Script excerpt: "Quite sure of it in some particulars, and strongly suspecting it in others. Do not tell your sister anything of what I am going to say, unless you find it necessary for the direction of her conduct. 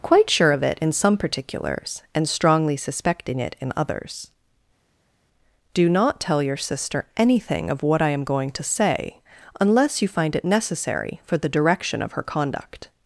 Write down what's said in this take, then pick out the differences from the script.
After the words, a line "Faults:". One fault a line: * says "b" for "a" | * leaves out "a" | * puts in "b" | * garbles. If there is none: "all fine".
"Quite sure of it in some particulars, and strongly suspecting it in others. Do not tell your sister anything of what I am going to say, unless you find it necessary for the direction of her conduct.
Faults:
all fine